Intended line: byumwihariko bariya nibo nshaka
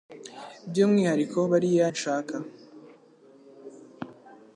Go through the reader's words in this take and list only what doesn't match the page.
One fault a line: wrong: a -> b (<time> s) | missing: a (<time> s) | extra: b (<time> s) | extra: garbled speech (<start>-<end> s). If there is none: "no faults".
missing: nibo (1.9 s)